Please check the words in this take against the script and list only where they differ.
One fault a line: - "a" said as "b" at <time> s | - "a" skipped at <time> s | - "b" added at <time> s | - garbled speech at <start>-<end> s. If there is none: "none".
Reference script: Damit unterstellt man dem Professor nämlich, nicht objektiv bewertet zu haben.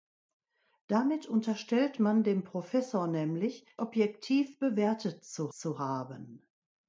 - "nicht" skipped at 3.7 s
- "zu" added at 5.5 s